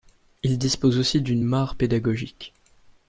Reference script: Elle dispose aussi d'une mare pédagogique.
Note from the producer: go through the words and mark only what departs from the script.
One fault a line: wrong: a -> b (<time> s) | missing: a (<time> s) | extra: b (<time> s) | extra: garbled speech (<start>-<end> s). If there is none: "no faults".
wrong: Elle -> Il (0.4 s)